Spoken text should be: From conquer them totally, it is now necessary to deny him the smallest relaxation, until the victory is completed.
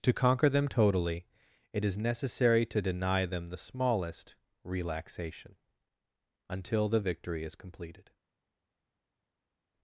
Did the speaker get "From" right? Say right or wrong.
wrong